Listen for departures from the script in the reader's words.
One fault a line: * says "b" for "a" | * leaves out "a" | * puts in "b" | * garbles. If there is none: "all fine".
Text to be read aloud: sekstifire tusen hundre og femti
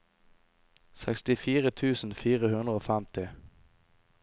* puts in "fire"